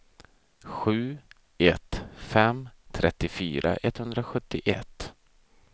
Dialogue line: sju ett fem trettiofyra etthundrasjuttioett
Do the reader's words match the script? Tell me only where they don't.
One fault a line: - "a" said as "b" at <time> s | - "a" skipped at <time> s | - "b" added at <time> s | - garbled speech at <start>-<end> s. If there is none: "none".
none